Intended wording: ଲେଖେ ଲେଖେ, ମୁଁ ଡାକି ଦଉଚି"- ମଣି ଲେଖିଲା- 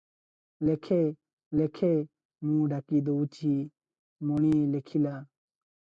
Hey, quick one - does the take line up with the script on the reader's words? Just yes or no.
yes